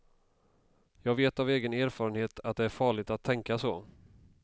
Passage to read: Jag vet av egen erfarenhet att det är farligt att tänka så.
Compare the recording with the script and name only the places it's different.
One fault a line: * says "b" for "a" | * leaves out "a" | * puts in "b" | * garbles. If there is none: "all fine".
all fine